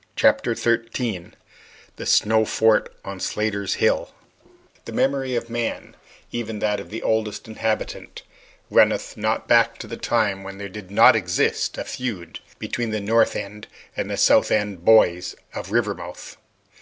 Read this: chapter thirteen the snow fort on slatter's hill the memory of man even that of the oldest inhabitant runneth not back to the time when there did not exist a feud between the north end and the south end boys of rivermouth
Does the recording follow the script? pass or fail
pass